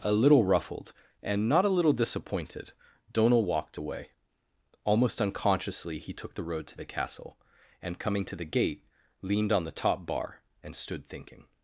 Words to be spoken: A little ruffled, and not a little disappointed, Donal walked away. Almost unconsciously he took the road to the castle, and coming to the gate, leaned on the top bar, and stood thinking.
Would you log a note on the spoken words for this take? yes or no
no